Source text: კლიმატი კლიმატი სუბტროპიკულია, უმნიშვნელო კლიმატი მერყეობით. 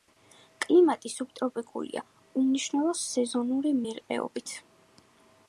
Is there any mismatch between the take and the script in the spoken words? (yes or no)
yes